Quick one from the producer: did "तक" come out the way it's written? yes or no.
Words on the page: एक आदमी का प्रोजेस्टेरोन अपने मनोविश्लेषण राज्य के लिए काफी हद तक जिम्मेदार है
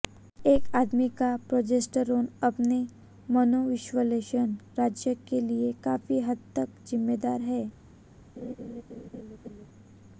yes